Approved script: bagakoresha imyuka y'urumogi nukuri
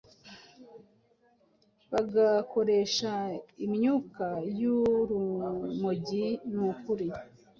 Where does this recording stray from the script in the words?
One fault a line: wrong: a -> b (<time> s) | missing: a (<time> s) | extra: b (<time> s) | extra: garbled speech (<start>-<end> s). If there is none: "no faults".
no faults